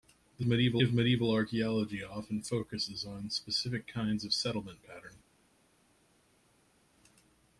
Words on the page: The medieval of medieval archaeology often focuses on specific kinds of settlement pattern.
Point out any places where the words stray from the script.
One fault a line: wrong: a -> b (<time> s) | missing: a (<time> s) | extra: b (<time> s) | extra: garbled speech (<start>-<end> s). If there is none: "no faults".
no faults